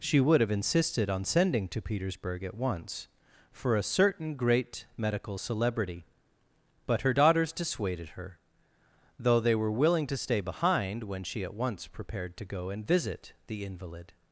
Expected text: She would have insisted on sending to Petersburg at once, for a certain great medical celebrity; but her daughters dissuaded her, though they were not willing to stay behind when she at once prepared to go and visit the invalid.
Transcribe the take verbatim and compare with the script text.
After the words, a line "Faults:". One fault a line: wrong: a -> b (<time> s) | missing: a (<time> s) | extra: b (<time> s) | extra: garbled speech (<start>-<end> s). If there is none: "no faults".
She would have insisted on sending to Petersburg at once, for a certain great medical celebrity; but her daughters dissuaded her, though they were willing to stay behind when she at once prepared to go and visit the invalid.
Faults:
missing: not (9.7 s)